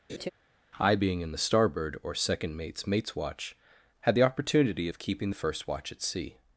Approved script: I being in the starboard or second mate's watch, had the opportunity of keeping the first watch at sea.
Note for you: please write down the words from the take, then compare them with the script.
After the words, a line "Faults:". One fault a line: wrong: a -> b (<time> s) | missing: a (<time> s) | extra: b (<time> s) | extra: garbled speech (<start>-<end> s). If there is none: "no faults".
I being in the starboard or second mate's mate's watch, had the opportunity of keeping the first watch at sea.
Faults:
extra: mate's (2.9 s)